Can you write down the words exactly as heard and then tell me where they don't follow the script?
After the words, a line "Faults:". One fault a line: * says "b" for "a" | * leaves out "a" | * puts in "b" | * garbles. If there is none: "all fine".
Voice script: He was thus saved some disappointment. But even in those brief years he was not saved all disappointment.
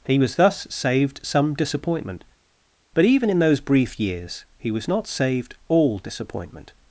He was thus saved some disappointment. But even in those brief years he was not saved all disappointment.
Faults:
all fine